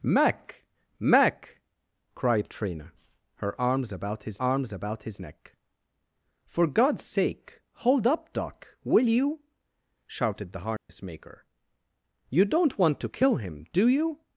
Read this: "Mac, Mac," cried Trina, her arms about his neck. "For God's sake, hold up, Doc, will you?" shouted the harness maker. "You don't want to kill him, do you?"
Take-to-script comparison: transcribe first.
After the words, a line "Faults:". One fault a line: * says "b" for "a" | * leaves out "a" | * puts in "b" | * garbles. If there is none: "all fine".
"Mac, Mac," cried Trina, her arms about his arms about his neck. "For God's sake, hold up, Doc, will you?" shouted the harness maker. "You don't want to kill him, do you?"
Faults:
* puts in "arms about his"